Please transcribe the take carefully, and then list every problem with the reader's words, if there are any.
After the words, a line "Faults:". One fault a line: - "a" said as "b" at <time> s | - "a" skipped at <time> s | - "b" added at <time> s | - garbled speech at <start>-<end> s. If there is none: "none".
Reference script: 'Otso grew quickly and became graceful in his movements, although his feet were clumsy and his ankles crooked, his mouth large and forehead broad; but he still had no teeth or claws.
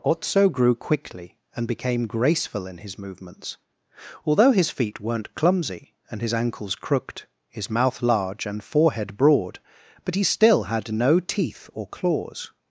'Otso grew quickly and became graceful in his movements, although his feet weren't clumsy and his ankles crooked, his mouth large and forehead broad; but he still had no teeth or claws.
Faults:
- "were" said as "weren't" at 5.0 s